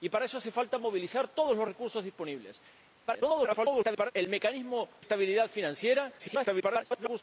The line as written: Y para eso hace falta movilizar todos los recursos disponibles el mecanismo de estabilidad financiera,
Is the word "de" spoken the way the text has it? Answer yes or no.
no